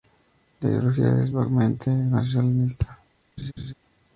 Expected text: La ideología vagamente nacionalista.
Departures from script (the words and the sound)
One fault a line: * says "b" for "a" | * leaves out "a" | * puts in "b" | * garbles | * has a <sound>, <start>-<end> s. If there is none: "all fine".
* puts in "es"
* has a laugh, 3.4-3.7 s